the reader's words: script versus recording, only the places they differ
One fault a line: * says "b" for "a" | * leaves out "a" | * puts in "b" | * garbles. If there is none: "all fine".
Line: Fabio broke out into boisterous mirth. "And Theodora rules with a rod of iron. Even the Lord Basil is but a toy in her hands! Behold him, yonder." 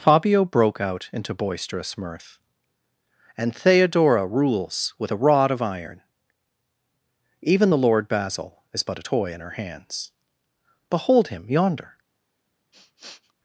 all fine